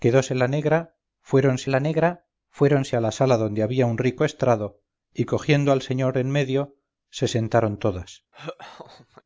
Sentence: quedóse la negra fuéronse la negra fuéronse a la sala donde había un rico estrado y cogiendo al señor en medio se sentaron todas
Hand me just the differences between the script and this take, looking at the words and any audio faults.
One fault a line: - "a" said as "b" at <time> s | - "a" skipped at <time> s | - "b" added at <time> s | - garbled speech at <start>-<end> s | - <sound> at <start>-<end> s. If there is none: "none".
- laugh at 8.3-9.2 s